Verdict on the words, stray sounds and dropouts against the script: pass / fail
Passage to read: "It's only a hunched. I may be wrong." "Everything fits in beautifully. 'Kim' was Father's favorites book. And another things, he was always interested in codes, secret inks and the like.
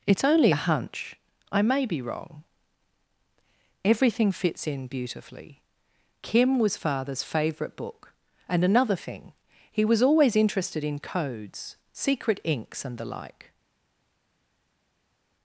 fail